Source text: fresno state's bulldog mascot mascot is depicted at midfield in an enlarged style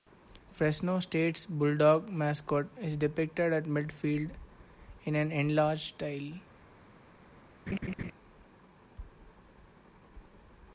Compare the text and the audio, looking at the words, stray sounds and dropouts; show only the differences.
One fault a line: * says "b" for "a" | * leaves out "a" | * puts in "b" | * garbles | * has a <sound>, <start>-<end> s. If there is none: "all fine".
* leaves out "mascot"
* has a laugh, 7.7-8.1 s